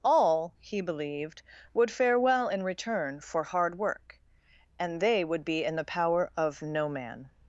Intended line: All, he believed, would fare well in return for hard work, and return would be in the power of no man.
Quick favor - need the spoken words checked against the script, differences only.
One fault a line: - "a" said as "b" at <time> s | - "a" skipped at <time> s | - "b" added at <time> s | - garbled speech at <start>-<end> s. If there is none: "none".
- "return" said as "they" at 5.0 s